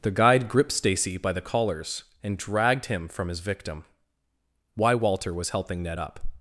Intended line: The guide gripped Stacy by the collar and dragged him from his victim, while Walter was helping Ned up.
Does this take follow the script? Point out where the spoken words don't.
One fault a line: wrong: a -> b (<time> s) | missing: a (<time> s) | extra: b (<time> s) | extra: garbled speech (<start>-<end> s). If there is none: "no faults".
wrong: collar -> collars (1.4 s)
wrong: while -> why (4.8 s)